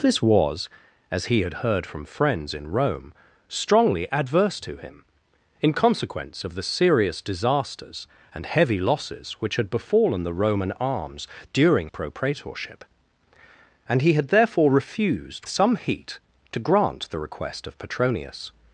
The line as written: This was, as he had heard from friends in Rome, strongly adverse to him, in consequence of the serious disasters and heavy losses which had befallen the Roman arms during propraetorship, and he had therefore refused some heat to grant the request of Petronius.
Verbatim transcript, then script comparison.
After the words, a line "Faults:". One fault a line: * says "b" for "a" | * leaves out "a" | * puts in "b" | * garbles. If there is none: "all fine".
This was, as he had heard from friends in Rome, strongly adverse to him, in consequence of the serious disasters and heavy losses which had befallen the Roman arms during propraetorship, and he had therefore refused some heat to grant the request of Petronius.
Faults:
all fine